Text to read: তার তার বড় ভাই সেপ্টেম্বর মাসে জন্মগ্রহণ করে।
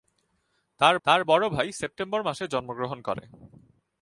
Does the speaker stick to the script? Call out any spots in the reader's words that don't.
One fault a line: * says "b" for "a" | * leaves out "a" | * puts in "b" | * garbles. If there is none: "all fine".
all fine